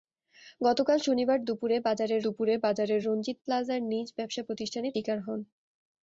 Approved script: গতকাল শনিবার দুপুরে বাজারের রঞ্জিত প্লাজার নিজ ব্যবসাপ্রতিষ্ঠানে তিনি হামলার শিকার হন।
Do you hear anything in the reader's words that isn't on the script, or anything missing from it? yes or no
yes